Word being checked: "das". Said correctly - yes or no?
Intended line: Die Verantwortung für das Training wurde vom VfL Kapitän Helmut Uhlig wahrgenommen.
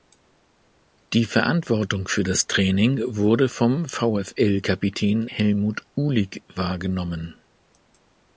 yes